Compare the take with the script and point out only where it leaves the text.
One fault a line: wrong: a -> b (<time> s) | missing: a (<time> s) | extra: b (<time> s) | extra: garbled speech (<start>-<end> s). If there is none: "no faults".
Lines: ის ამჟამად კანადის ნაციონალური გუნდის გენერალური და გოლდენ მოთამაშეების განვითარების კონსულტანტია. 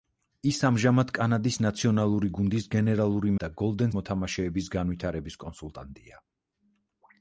no faults